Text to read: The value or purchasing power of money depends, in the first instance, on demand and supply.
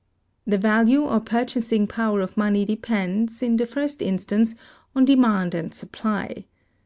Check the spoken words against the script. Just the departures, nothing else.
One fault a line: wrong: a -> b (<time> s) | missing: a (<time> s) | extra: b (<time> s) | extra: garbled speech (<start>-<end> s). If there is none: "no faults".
no faults